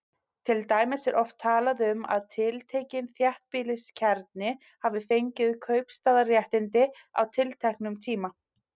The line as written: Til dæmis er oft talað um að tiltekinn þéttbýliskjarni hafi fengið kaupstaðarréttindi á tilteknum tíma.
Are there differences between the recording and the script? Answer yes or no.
no